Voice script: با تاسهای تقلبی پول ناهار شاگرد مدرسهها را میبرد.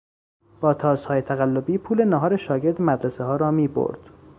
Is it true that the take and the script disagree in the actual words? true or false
false